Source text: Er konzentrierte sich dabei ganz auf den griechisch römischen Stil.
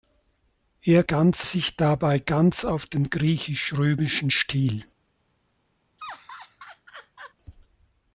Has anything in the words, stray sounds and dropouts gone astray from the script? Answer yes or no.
yes